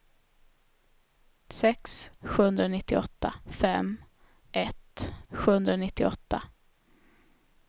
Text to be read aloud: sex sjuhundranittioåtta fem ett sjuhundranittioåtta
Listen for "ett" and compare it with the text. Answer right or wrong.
right